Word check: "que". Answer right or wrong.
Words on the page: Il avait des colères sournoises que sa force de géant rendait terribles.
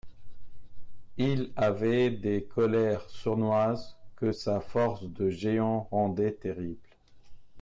right